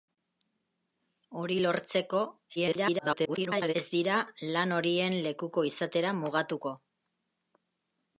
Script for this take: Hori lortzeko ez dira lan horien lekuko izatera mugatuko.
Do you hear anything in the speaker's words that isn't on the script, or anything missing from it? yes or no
yes